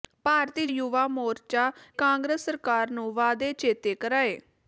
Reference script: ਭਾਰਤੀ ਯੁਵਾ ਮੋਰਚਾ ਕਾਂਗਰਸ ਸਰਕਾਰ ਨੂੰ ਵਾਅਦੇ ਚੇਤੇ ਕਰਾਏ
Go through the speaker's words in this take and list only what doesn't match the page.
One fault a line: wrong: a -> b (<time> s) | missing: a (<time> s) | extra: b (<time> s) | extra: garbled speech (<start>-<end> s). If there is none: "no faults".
no faults